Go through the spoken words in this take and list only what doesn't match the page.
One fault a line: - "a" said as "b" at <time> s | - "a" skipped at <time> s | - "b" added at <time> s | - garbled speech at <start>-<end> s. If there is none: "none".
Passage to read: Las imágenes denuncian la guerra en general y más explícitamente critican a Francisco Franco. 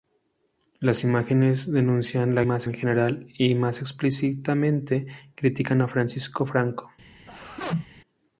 - "guerra" said as "más" at 2.4 s